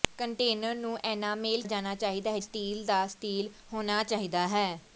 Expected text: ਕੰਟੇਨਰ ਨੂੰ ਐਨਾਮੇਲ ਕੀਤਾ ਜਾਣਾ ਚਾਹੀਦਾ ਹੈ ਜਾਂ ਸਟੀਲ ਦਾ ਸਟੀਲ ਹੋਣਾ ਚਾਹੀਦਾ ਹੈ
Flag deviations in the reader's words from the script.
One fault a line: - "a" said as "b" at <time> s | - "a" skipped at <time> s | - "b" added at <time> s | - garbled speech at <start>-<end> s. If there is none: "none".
- "ਕੀਤਾ" skipped at 1.6 s
- "ਜਾਂ" skipped at 2.4 s